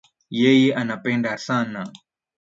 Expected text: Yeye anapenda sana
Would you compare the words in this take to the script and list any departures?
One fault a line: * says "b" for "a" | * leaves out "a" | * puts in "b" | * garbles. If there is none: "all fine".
all fine